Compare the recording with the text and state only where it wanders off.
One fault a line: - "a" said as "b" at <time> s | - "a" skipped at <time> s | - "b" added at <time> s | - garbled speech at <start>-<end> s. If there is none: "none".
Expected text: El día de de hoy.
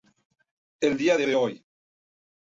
none